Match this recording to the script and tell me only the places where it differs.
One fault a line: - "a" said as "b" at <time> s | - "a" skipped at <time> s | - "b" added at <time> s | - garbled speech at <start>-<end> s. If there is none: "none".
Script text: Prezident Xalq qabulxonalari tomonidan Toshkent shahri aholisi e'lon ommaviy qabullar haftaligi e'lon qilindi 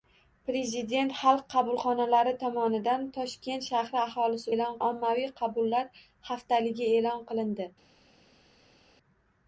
none